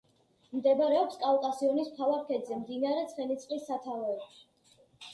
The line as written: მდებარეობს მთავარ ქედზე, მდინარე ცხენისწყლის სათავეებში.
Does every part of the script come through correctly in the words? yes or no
no